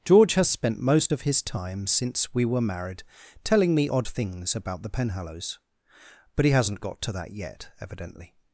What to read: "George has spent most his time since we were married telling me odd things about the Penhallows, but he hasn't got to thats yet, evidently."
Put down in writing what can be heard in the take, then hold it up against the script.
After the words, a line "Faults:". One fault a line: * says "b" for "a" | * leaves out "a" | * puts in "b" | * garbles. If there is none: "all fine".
"George has spent most of his time since we were married telling me odd things about the Penhallows, but he hasn't got to that yet, evidently."
Faults:
* puts in "of"
* says "that" for "thats"